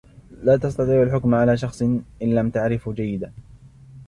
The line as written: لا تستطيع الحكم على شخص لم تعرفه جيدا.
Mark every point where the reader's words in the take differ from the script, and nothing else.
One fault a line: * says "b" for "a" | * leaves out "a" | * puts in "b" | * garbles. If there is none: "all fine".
* puts in "إن"